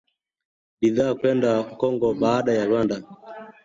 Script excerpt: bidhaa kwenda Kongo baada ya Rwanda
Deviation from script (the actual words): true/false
false